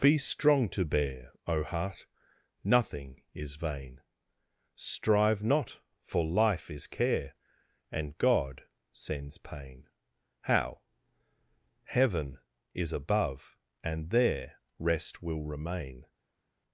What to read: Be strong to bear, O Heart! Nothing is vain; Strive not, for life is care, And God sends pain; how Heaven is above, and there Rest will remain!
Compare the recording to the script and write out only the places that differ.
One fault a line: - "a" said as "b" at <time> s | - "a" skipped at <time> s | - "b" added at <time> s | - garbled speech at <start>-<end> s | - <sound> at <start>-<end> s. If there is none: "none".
none